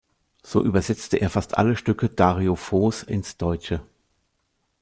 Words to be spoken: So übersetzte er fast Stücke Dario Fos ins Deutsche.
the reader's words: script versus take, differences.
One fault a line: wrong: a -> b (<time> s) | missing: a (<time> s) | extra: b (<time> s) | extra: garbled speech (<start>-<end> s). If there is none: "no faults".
extra: alle (1.6 s)